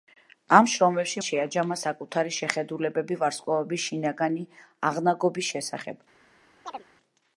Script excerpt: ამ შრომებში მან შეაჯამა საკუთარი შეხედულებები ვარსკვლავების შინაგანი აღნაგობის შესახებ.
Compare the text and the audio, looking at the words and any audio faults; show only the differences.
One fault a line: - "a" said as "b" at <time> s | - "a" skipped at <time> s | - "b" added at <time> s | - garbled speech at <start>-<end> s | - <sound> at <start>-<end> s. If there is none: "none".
- "მან" skipped at 1.2 s
- chirp at 6.6-6.8 s